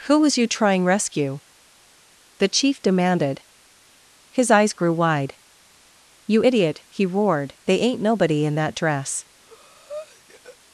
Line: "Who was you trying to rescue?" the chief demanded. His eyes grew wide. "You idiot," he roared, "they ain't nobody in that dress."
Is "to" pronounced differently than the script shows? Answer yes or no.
yes